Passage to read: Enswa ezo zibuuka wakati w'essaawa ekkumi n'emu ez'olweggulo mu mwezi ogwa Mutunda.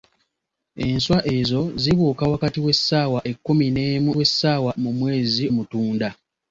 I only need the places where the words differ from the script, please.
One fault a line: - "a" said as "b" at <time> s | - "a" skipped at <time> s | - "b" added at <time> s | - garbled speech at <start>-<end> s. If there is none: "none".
- "ez'olweggulo" said as "w'essaawa" at 4.2 s
- "ogwa" skipped at 5.4 s